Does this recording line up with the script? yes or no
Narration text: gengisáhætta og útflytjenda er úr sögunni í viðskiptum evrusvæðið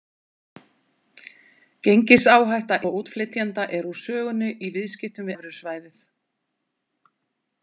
yes